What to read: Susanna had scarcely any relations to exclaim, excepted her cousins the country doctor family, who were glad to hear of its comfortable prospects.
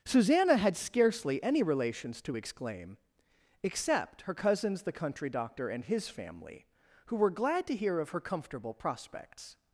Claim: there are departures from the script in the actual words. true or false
true